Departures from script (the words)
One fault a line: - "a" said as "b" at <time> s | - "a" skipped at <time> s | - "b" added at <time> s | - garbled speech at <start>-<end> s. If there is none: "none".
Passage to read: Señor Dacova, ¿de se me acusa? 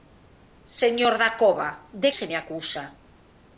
none